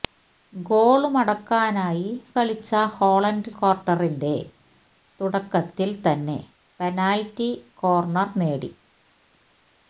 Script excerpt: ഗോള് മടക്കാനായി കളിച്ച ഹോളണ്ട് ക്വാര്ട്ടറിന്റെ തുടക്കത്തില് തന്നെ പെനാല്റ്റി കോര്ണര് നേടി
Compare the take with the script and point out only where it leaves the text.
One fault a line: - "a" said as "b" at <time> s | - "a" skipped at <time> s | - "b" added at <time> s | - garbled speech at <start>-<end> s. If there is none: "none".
none